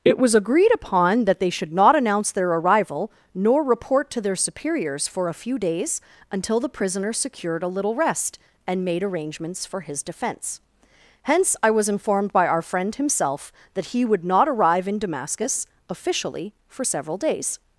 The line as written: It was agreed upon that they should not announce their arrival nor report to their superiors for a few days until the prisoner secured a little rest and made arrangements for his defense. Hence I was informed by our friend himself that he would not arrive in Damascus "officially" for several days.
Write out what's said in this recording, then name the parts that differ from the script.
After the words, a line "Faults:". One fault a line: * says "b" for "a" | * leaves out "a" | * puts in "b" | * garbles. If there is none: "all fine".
It was agreed upon that they should not announce their arrival nor report to their superiors for a few days until the prisoner secured a little rest and made arrangements for his defense. Hence I was informed by our friend himself that he would not arrive in Damascus "officially" for several days.
Faults:
all fine